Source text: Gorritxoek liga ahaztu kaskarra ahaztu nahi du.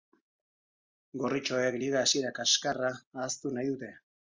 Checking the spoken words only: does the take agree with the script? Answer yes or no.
no